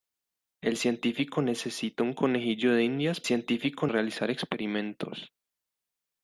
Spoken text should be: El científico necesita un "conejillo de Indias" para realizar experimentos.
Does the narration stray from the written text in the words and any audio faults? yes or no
yes